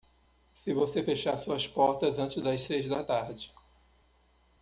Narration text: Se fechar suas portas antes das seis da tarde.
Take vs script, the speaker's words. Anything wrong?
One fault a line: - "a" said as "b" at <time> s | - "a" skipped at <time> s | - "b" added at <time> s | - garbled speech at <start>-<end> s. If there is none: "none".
- "você" added at 0.7 s